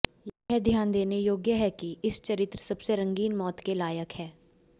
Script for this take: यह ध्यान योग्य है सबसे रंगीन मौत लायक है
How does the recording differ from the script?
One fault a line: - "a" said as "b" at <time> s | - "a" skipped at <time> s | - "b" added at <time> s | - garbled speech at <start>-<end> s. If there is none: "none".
- "देने" added at 0.9 s
- "कि इस चरित्र" added at 1.7 s
- "के" added at 3.6 s